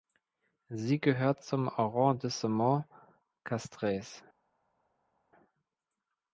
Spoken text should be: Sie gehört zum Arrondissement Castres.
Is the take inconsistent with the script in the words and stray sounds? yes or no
no